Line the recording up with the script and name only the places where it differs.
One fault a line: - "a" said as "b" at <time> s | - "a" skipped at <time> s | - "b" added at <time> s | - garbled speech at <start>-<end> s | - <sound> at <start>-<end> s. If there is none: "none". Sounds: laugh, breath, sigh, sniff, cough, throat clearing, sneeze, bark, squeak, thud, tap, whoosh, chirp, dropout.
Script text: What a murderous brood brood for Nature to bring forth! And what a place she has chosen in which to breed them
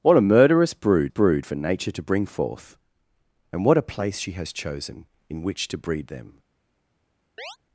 - chirp at 7.4-7.6 s